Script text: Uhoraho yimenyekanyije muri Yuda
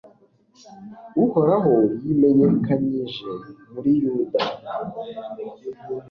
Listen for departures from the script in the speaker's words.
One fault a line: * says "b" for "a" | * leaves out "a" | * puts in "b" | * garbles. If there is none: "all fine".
all fine